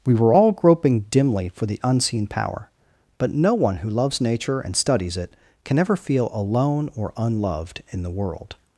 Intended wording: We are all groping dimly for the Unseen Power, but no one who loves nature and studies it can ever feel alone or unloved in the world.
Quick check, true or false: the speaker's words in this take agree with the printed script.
false